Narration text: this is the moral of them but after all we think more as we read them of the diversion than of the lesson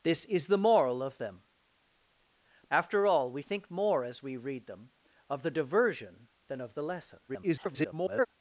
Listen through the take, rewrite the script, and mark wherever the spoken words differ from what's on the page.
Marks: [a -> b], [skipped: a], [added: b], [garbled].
this is the moral of them [skipped: but] after all we think more as we read them of the diversion than of the lesson [garbled]